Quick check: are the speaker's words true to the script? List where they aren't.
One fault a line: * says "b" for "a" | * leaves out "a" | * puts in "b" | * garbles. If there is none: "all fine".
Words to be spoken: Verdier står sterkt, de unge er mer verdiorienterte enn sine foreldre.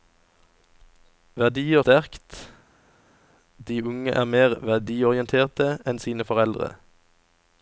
* leaves out "står"